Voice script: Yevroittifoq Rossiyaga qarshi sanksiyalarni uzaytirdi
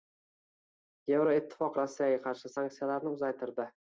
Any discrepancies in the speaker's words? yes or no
no